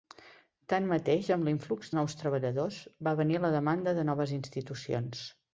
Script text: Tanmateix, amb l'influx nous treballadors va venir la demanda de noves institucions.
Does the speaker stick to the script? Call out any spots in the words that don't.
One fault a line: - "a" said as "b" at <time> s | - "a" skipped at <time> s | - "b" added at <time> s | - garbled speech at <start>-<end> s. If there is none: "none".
none